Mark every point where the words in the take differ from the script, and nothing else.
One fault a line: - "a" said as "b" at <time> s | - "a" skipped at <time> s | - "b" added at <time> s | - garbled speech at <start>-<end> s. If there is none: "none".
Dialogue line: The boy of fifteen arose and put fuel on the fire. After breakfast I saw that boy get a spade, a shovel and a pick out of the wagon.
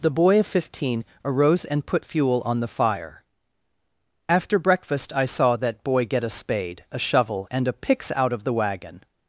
- "pick" said as "picks" at 7.7 s